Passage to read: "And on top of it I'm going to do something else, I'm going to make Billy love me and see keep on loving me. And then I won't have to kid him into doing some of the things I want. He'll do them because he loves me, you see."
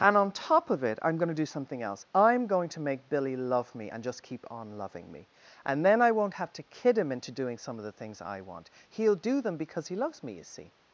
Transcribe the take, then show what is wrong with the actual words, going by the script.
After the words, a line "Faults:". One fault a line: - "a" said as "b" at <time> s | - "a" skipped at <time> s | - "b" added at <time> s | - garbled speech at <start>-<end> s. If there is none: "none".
"And on top of it I'm going to do something else, I'm going to make Billy love me and just keep on loving me. And then I won't have to kid him into doing some of the things I want. He'll do them because he loves me, you see."
Faults:
- "see" said as "just" at 4.0 s